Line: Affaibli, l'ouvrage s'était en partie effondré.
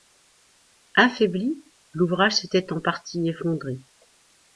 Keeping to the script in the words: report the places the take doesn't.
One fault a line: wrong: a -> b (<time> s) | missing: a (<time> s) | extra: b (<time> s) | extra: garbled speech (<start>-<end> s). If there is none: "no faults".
no faults